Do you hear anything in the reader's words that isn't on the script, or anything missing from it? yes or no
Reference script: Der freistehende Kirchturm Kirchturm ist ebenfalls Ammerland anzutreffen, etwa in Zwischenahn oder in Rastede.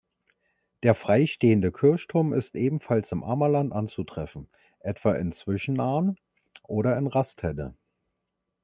yes